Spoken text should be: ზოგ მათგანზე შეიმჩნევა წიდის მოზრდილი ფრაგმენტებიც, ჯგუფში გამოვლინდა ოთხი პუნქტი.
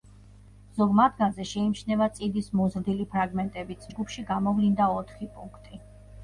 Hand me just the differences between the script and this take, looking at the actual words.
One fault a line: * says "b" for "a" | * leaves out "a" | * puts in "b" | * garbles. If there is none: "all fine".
all fine